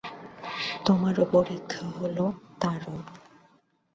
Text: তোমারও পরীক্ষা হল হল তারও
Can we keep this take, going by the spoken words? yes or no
no